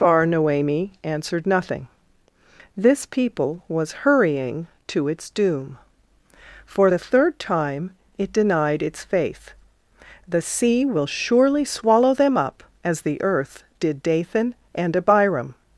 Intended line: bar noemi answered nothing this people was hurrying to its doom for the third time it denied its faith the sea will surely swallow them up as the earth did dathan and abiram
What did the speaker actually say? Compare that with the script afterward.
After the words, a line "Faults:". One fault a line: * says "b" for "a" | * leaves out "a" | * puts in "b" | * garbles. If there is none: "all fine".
bar noemi answered nothing this people was hurrying to its doom for the third time it denied its faith the sea will surely swallow them up as the earth did dathan and abiram
Faults:
all fine